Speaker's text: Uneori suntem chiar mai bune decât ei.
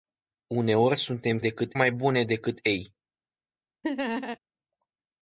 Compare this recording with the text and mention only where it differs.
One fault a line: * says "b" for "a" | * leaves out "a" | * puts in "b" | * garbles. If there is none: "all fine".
* says "decât" for "chiar"